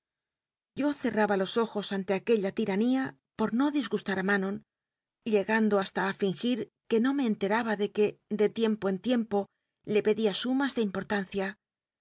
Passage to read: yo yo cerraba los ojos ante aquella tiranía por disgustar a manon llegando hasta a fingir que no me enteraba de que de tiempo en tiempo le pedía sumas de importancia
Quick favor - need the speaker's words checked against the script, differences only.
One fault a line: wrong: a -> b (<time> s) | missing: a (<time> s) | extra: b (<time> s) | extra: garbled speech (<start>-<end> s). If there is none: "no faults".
missing: yo (0.9 s)
extra: no (3.5 s)